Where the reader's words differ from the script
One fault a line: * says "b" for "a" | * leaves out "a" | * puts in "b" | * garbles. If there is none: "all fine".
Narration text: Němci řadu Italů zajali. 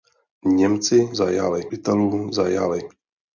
* says "zajali" for "řadu"